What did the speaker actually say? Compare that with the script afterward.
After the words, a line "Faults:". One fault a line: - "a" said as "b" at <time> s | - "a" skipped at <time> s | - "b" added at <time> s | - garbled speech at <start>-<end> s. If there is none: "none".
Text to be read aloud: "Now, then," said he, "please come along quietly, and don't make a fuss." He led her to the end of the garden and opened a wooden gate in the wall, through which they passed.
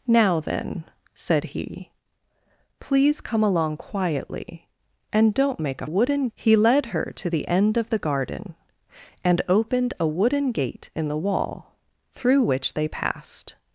"Now, then," said he, "please come along quietly, and don't make a wooden." He led her to the end of the garden and opened a wooden gate in the wall, through which they passed.
Faults:
- "fuss" said as "wooden" at 5.8 s